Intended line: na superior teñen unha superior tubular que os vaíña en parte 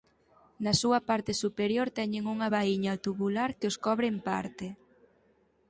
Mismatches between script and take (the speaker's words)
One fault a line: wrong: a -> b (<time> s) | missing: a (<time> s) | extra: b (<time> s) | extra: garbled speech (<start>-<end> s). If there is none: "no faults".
extra: súa parte (0.8 s)
wrong: superior -> vaíña (2.6 s)
wrong: vaíña -> cobre (3.9 s)